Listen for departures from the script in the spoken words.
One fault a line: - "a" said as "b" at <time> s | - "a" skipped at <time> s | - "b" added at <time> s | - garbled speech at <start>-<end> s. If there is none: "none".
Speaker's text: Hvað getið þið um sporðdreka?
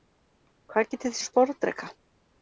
none